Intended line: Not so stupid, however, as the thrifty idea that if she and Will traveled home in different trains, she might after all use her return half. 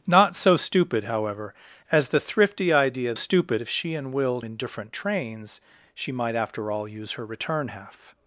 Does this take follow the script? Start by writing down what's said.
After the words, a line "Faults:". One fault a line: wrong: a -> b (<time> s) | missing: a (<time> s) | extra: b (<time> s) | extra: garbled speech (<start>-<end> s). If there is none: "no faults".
Not so stupid, however, as the thrifty idea stupid if she and Will in different trains, she might after all use her return half.
Faults:
wrong: that -> stupid (3.1 s)
missing: traveled home (4.4 s)